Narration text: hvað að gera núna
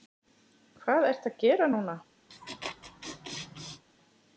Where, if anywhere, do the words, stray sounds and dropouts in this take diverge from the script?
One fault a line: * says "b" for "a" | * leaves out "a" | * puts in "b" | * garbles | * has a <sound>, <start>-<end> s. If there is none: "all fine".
* puts in "ertu"
* has a laugh, 2.3-3.8 s